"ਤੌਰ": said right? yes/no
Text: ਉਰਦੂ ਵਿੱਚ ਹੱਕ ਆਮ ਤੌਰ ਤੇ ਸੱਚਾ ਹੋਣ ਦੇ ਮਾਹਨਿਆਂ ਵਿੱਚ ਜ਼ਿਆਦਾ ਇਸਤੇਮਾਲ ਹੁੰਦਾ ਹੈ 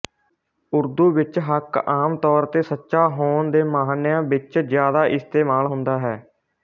yes